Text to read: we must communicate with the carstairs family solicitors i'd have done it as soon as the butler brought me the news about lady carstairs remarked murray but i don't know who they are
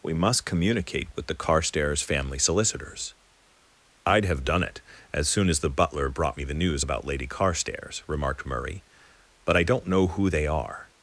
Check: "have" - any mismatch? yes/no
no